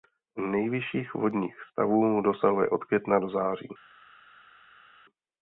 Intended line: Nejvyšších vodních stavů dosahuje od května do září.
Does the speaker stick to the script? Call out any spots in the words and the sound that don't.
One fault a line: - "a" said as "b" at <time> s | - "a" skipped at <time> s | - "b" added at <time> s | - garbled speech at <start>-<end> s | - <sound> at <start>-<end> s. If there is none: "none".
none